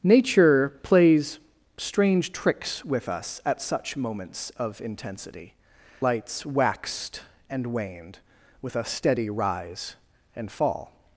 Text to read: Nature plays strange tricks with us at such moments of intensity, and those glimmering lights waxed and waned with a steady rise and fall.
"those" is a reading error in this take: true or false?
true